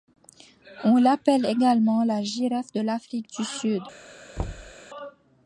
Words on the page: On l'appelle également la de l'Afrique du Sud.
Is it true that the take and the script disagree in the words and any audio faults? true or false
true